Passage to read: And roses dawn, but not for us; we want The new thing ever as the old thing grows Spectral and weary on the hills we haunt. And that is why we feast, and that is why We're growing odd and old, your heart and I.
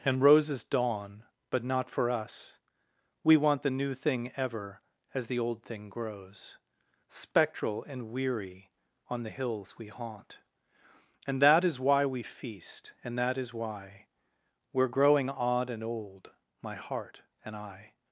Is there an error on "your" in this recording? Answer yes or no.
yes